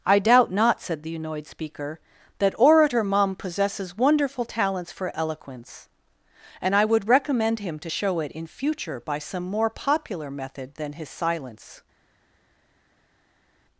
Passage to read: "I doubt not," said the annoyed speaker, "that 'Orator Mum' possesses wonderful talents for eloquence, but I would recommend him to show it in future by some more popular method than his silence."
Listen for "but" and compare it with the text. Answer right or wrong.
wrong